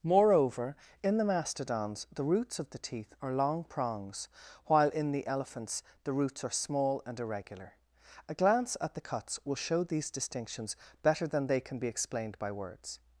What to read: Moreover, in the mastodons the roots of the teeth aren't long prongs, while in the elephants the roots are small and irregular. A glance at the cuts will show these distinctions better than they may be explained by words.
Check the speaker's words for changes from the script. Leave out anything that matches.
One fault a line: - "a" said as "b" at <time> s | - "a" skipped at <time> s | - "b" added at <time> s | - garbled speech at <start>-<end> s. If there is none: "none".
- "aren't" said as "are" at 3.2 s
- "may" said as "can" at 11.6 s